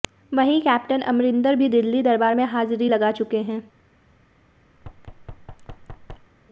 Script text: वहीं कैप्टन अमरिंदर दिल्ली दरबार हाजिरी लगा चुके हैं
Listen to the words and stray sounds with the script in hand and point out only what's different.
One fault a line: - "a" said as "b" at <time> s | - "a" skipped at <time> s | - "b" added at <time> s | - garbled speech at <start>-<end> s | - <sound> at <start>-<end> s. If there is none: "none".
- "भी" added at 1.6 s
- "में" added at 2.3 s
- thud at 4.8-6.3 s